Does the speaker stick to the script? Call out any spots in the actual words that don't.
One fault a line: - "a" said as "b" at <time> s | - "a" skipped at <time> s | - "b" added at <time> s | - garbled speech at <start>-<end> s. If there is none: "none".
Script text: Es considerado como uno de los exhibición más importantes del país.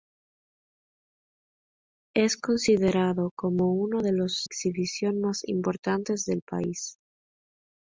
none